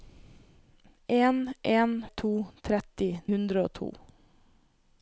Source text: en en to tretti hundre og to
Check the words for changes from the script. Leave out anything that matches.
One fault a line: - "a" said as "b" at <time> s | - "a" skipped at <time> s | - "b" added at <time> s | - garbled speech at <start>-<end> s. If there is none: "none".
none